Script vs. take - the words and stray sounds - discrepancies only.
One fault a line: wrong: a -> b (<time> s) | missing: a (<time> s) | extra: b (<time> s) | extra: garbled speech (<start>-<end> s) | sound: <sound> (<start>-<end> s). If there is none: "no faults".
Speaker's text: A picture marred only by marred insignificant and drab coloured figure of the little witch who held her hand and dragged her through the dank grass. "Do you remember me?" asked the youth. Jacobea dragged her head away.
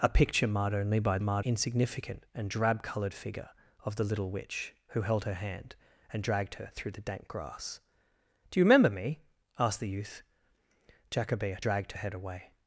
no faults